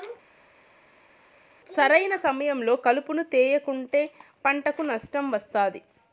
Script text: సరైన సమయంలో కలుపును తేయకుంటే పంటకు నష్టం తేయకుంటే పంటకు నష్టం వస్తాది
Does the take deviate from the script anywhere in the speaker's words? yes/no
yes